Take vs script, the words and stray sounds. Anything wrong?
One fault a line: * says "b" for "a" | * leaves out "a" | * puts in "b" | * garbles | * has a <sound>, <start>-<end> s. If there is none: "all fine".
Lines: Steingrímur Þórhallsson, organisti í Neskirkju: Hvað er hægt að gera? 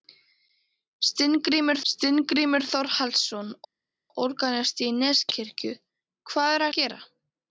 * puts in "steingrímur"
* leaves out "hægt"